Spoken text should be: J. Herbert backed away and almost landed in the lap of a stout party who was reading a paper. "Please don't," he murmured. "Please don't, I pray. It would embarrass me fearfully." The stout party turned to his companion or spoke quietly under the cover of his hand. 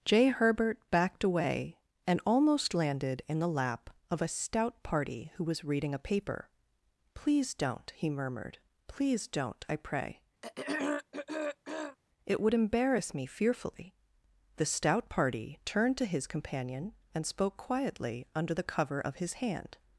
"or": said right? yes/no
no